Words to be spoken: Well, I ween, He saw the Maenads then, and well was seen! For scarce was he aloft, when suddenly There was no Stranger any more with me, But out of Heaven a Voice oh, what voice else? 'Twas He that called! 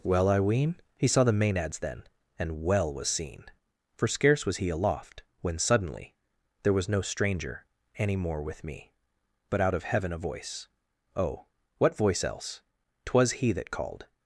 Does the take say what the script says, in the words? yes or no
yes